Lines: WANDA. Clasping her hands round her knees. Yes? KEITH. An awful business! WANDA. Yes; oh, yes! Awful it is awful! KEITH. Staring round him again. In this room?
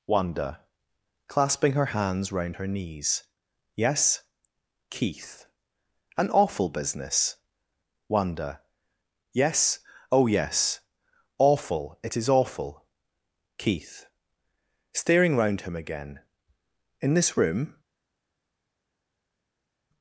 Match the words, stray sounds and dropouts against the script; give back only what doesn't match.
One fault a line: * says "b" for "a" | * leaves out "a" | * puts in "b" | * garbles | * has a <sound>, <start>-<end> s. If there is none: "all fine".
all fine